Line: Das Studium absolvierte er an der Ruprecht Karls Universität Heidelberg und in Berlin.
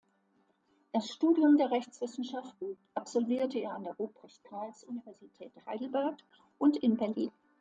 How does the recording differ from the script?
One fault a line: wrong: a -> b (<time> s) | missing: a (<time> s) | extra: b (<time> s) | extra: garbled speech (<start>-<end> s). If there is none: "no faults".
extra: der Rechtswissenschaften (1.6 s)